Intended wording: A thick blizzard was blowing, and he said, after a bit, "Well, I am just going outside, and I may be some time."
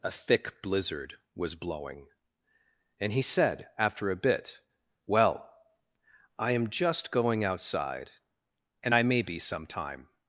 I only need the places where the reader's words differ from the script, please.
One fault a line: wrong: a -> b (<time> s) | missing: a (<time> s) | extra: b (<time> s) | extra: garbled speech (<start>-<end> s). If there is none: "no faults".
no faults